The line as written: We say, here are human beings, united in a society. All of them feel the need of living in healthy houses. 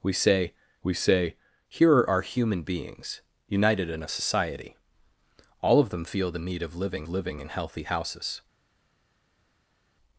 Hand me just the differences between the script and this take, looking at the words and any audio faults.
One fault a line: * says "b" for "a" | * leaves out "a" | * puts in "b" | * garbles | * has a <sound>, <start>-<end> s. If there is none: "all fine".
* puts in "we say"
* puts in "living"